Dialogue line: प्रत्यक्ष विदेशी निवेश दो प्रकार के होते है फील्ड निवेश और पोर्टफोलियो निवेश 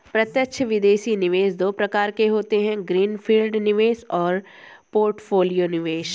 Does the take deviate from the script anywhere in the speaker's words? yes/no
yes